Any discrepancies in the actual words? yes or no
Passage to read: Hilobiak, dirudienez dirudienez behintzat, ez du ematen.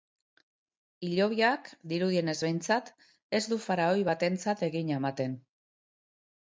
yes